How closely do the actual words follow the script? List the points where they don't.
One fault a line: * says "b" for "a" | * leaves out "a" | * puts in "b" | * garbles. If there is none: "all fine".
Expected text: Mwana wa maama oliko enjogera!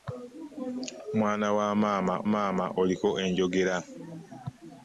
* puts in "maama"